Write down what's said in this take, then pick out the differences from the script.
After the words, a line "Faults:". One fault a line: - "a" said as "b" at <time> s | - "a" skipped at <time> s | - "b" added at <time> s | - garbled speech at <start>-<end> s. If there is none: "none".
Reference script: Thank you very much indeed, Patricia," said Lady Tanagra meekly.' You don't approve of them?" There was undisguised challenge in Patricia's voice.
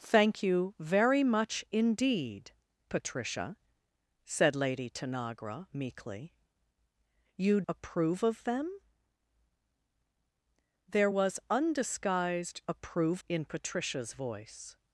Thank you very much indeed, Patricia," said Lady Tanagra meekly.' You approve of them?" There was undisguised approve in Patricia's voice.
Faults:
- "don't" skipped at 7.6 s
- "challenge" said as "approve" at 12.7 s